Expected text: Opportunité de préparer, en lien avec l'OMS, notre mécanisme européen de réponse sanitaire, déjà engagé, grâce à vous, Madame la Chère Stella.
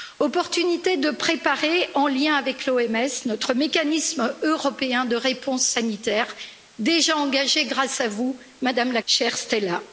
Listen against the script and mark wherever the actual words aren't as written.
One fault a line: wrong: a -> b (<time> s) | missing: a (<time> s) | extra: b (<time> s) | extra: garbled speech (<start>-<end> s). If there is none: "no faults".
no faults